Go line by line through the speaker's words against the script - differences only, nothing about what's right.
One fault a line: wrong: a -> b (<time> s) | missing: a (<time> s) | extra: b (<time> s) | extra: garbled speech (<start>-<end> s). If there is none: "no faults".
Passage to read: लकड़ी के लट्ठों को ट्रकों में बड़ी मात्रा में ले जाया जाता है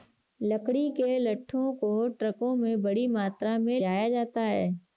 missing: ले (3.8 s)